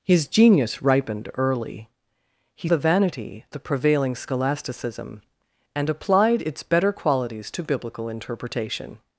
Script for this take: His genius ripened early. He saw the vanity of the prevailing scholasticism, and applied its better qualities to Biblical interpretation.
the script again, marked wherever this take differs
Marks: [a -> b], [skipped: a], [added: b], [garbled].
His genius ripened early. He [skipped: saw] the vanity [skipped: of] the prevailing scholasticism, and applied its better qualities to Biblical interpretation.